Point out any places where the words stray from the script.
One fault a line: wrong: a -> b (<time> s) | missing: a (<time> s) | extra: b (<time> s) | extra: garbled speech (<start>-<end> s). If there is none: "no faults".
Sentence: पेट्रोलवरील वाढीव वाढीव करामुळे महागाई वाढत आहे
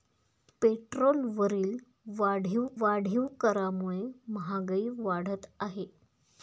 no faults